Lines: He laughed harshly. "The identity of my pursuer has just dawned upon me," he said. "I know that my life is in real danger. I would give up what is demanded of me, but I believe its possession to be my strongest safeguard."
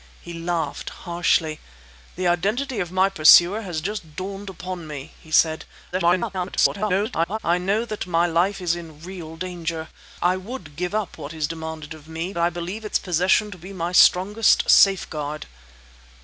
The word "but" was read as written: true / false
false